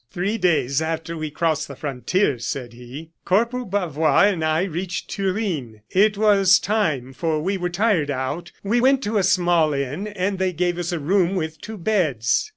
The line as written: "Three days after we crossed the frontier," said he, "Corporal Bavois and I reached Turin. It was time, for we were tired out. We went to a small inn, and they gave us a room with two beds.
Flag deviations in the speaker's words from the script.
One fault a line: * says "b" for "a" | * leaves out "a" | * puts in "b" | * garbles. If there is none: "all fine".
all fine